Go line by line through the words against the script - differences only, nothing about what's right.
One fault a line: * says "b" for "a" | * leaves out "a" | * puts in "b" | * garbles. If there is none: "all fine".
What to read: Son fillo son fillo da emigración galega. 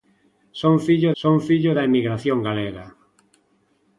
all fine